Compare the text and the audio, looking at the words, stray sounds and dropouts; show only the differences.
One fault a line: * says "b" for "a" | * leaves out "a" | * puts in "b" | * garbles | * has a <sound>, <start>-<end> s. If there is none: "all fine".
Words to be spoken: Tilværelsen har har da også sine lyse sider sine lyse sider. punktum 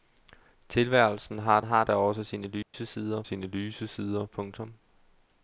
* has a dropout, 2.6-2.7 s